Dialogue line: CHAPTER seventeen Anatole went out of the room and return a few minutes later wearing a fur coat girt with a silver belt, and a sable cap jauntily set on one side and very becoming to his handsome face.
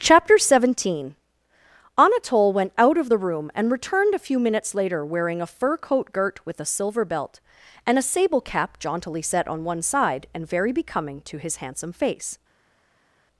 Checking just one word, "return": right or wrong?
wrong